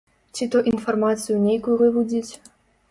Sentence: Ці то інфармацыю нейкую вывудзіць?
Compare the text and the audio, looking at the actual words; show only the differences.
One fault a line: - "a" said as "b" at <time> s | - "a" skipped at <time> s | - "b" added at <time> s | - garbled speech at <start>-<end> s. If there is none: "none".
none